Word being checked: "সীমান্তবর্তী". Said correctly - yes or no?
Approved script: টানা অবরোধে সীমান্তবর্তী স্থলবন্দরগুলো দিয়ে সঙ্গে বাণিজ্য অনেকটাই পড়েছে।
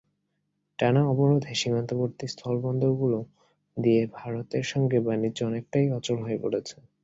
yes